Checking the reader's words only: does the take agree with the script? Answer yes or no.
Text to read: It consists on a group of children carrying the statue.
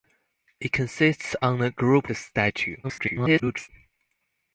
no